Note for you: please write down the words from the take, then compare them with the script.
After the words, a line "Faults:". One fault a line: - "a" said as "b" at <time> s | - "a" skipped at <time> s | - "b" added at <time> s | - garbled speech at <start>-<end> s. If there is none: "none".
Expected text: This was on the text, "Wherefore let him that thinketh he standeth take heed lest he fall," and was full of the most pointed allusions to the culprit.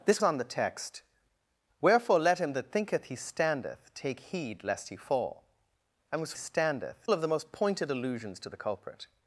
This on the text, "Wherefore let him that thinketh he standeth take heed lest he fall," and was standeth of the most pointed allusions to the culprit.
Faults:
- "was" skipped at 0.2 s
- "full" said as "standeth" at 6.3 s